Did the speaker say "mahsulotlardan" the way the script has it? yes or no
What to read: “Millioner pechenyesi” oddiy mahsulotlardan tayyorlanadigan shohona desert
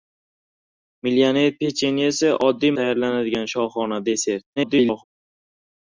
no